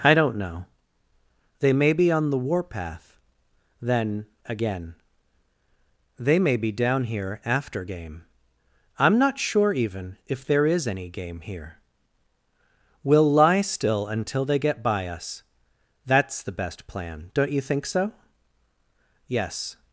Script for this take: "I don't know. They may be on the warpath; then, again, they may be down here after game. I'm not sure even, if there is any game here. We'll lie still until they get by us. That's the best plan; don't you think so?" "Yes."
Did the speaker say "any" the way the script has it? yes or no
yes